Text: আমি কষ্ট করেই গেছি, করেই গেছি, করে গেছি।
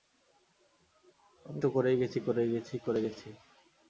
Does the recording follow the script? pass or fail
fail